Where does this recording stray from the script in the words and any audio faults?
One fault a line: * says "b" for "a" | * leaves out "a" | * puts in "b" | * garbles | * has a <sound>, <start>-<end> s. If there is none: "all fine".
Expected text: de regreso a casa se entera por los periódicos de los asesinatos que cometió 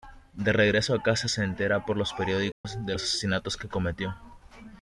* has a dropout, 2.5-2.6 s